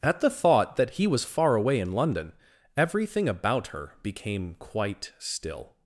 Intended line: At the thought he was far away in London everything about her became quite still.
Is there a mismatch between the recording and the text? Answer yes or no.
yes